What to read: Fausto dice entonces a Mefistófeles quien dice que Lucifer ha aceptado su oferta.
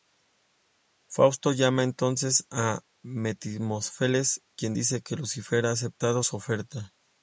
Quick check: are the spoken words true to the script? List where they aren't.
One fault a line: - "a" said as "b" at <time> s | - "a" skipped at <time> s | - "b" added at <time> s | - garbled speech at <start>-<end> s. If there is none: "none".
- "dice" said as "llama" at 1.5 s